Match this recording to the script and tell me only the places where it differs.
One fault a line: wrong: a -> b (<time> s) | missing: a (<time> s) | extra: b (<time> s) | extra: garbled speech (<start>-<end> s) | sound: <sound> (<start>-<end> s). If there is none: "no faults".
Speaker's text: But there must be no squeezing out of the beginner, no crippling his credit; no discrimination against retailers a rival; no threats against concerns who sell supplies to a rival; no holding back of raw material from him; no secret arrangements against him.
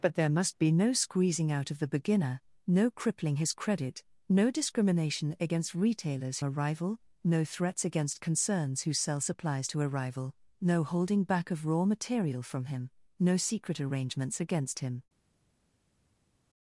no faults